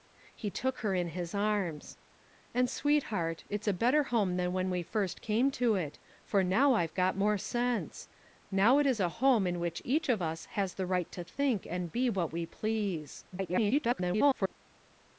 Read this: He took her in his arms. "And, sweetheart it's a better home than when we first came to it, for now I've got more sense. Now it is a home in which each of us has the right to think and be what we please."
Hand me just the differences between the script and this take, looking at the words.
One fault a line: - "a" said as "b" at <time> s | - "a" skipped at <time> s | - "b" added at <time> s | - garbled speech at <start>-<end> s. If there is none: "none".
- garbled speech at 13.3-14.5 s